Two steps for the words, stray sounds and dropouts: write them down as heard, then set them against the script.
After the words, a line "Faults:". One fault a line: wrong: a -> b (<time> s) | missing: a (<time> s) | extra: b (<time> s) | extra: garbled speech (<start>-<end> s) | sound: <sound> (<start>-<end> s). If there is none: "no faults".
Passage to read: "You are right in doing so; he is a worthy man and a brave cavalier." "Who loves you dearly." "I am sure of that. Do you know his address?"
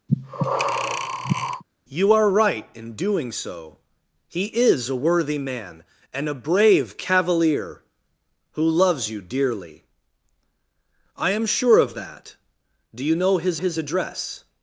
"You are right in doing so; he is a worthy man and a brave cavalier." "Who loves you dearly." "I am sure of that. Do you know his his address?"
Faults:
sound: breath (0.1-1.6 s)
extra: his (13.6 s)